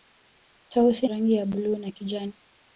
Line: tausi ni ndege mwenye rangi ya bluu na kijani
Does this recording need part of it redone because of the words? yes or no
yes